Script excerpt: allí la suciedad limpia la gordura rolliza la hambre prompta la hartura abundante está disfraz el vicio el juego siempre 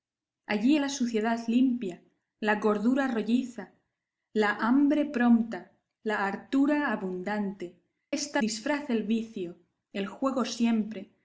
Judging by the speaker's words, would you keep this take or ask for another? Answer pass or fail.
pass